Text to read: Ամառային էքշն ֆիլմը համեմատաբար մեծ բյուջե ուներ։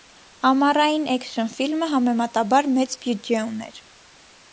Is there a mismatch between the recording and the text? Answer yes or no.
no